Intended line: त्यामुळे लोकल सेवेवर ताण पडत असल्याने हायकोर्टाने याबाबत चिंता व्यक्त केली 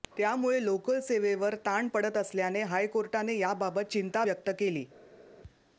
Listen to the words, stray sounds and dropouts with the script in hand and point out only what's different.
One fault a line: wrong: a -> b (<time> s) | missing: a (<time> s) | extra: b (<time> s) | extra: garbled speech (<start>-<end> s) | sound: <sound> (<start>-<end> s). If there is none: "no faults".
no faults